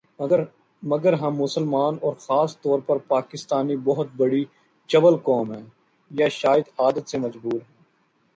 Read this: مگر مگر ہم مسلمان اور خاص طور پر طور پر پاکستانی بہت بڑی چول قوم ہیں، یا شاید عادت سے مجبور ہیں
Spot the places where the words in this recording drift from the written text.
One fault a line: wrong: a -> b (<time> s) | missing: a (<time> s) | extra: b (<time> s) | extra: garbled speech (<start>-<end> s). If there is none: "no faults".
missing: مگر (1.1 s)
missing: طور پر (3.0 s)